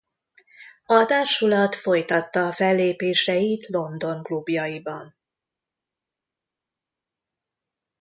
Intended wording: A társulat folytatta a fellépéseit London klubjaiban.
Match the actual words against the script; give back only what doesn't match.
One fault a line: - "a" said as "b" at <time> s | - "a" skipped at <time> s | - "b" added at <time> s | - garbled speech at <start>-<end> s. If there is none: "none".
none